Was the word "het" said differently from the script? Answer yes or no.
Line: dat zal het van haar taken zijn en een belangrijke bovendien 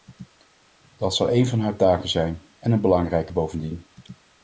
yes